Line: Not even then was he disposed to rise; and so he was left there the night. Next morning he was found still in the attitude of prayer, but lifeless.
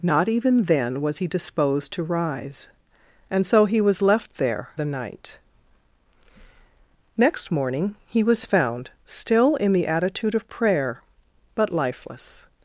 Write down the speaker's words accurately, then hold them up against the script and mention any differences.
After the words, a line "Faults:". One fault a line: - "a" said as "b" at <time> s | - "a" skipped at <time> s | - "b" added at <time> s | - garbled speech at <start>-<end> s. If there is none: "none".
Not even then was he disposed to rise; and so he was left there the night. Next morning he was found still in the attitude of prayer, but lifeless.
Faults:
none